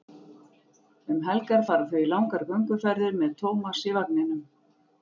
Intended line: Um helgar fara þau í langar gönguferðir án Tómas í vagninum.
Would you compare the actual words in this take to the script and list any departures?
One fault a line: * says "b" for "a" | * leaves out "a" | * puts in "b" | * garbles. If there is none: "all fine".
* says "með" for "án"